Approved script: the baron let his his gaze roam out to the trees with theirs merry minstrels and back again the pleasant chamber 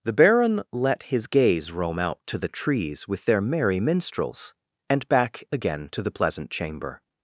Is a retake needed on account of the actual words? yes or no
yes